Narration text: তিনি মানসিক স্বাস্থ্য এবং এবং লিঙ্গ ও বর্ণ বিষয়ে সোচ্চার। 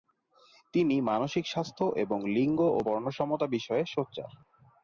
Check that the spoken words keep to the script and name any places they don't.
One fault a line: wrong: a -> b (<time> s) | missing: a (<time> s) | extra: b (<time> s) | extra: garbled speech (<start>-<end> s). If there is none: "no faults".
missing: এবং (2.2 s)
extra: সমতা (3.1 s)